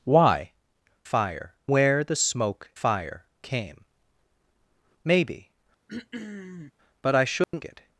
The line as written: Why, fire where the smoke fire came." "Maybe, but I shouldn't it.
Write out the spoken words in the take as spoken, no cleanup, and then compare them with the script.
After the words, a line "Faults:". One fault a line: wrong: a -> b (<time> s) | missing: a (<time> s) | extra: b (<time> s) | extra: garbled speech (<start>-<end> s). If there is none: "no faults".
Why, fire where the smoke fire came." "Maybe, but I shouldn't it.
Faults:
no faults